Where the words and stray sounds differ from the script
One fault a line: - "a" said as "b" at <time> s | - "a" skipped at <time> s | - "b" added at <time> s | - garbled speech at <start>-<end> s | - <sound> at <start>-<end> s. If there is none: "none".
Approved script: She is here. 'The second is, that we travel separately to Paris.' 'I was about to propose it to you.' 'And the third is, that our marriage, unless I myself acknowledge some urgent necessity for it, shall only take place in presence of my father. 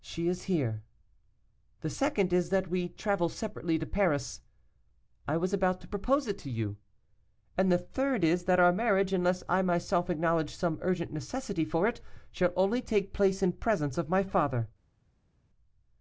none